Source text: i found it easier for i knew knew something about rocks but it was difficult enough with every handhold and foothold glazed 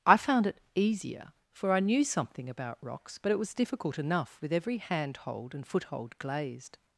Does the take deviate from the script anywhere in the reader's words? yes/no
yes